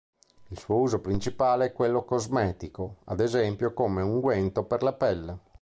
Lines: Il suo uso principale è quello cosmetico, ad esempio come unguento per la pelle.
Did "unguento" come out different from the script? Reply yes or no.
no